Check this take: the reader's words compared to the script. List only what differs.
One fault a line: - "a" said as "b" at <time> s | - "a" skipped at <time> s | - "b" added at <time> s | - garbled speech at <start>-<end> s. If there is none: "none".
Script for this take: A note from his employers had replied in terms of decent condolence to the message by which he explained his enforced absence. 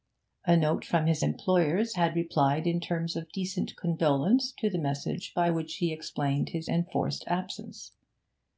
none